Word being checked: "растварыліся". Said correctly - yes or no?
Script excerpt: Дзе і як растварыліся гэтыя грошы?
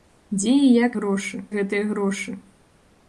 no